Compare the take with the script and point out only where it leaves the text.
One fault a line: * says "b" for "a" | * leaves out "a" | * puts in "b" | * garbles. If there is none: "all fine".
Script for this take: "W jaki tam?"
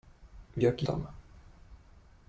all fine